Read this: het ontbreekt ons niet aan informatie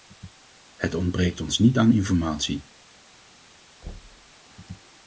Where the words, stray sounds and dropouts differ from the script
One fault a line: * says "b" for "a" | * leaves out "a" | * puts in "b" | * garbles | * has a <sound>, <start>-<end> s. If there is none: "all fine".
* has a thud, 3.8-4.3 s